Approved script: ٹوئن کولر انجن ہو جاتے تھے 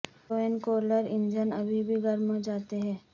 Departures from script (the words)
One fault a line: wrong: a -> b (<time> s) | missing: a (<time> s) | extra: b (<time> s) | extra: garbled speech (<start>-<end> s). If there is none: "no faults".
extra: ابھی بھی گرم (1.5 s)
wrong: تھے -> ہیں (2.8 s)